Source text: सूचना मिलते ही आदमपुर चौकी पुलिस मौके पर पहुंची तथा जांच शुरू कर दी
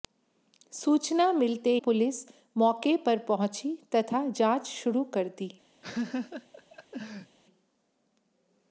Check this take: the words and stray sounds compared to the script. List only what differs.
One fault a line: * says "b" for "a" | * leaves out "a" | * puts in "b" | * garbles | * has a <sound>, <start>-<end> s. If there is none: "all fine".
* leaves out "ही आदमपुर चौकी"
* has a laugh, 5.8-7.4 s